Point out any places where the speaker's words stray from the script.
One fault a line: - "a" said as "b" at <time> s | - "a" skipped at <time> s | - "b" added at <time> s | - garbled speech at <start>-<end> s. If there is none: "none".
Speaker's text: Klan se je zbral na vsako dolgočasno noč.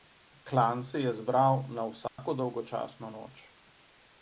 none